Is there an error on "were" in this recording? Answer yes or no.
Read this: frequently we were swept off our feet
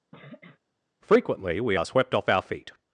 yes